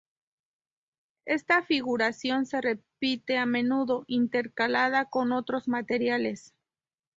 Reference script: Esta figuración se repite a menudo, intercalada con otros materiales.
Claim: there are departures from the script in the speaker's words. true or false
false